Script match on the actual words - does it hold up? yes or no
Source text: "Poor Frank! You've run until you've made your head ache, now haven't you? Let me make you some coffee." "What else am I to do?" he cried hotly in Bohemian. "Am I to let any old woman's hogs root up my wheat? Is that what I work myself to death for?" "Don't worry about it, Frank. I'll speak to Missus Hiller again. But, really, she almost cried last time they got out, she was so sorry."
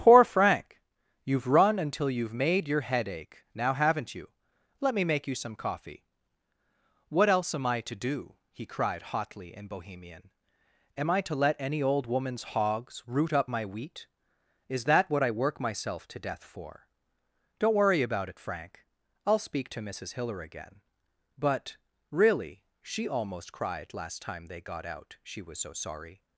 yes